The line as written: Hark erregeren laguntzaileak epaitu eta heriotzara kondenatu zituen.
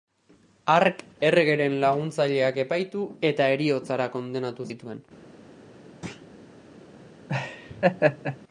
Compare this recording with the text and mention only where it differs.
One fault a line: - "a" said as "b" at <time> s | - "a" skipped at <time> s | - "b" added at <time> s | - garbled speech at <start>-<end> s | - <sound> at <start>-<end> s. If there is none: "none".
- thud at 6.0-6.3 s
- laugh at 7.3-8.4 s